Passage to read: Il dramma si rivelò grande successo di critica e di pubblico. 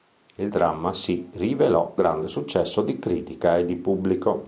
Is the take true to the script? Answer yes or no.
yes